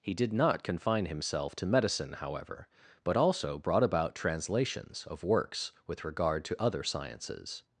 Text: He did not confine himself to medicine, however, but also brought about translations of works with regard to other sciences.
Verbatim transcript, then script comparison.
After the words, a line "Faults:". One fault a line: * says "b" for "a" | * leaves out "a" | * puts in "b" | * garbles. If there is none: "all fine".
He did not confine himself to medicine, however, but also brought about translations of works with regard to other sciences.
Faults:
all fine